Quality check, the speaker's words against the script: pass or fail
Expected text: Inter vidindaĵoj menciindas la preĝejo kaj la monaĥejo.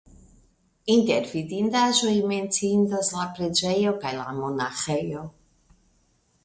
pass